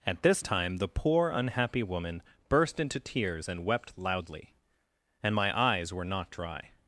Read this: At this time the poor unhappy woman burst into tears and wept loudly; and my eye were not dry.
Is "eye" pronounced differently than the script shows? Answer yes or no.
yes